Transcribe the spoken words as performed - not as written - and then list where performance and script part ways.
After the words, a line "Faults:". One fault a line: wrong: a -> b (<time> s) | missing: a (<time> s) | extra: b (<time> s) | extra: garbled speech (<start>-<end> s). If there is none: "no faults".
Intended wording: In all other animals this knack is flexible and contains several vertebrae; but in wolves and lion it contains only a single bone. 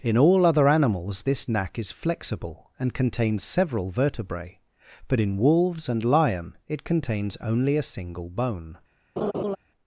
In all other animals this knack is flexible and contains several vertebrae; but in wolves and lion it contains only a single bone.
Faults:
no faults